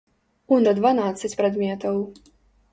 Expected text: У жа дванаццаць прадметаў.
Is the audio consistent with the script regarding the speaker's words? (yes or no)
yes